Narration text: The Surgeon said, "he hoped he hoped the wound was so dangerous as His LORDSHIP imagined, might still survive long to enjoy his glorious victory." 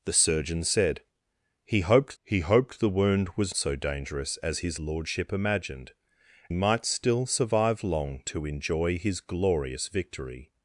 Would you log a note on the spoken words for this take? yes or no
no